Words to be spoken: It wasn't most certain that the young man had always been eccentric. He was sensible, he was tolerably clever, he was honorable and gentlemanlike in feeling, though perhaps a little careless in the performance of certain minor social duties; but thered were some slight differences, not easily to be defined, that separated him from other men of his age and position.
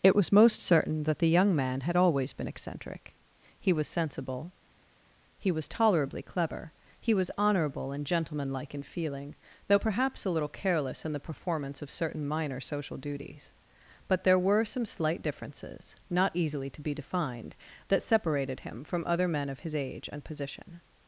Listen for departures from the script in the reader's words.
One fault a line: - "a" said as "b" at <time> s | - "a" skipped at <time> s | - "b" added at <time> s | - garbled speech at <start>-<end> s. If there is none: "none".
- "wasn't" said as "was" at 0.1 s
- "thered" said as "there" at 14.2 s